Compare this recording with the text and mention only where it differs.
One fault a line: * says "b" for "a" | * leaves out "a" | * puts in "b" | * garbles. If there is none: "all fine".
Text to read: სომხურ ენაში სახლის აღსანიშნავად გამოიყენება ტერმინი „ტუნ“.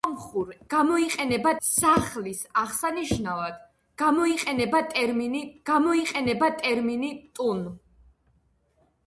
* says "გამოიყენება" for "ენაში"
* puts in "გამოიყენება ტერმინი"